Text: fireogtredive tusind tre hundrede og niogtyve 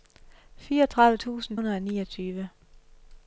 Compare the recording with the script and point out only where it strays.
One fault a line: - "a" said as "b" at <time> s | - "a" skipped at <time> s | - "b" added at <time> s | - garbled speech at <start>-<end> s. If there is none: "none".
- "tre" skipped at 1.6 s